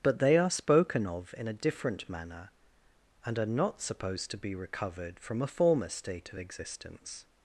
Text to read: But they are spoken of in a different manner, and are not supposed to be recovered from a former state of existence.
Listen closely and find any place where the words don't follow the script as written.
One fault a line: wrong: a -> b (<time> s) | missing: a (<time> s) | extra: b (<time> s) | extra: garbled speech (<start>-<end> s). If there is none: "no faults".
no faults